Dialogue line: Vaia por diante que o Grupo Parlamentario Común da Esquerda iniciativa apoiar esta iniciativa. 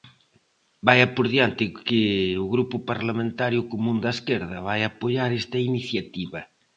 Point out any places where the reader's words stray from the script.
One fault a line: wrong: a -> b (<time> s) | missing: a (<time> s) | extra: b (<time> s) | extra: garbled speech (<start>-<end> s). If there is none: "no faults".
wrong: iniciativa -> vai (4.7 s)